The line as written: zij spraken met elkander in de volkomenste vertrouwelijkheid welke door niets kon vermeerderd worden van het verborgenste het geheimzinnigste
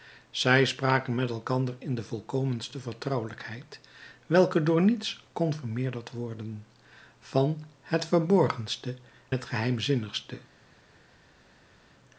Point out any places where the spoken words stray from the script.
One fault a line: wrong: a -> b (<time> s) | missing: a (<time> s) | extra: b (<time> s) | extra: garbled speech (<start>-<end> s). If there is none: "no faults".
no faults